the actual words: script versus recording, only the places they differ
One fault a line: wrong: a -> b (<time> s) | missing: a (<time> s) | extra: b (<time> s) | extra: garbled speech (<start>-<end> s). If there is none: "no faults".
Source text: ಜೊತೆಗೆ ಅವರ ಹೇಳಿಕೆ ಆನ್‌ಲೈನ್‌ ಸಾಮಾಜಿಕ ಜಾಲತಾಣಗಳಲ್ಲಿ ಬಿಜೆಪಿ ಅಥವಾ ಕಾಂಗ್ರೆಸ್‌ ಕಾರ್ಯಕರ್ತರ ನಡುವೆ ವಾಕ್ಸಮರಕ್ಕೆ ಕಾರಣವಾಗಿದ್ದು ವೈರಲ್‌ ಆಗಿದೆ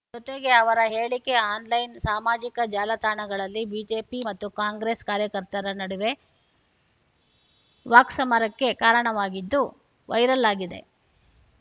wrong: ಅಥವಾ -> ಮತ್ತು (4.3 s)